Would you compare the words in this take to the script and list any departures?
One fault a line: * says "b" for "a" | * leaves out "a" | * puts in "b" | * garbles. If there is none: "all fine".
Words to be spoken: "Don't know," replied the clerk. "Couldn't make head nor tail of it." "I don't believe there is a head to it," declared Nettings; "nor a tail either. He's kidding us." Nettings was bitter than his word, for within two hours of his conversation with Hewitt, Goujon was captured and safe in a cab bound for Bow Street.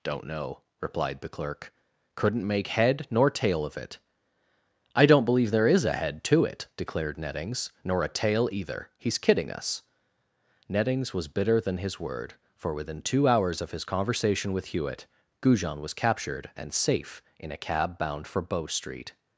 all fine